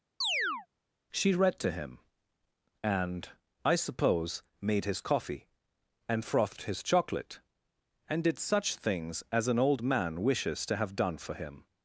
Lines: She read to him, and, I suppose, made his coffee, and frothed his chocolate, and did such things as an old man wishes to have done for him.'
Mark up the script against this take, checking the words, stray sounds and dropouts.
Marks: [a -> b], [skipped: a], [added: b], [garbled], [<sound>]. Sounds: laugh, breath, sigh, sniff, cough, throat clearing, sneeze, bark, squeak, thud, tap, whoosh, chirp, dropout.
[chirp] She read to him, and, I suppose, made his coffee, and frothed his chocolate, and did such things as an old man wishes to have done for him.'